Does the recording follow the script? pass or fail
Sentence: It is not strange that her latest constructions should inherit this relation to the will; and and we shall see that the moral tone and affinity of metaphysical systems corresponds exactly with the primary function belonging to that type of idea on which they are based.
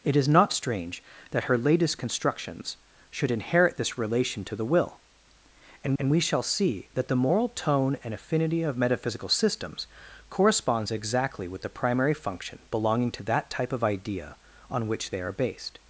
pass